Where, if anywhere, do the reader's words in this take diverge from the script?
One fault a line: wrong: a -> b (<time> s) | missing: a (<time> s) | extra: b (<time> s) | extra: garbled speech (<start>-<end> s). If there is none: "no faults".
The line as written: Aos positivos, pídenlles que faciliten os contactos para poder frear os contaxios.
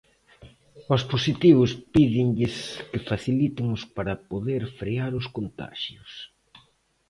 missing: contactos (3.8 s)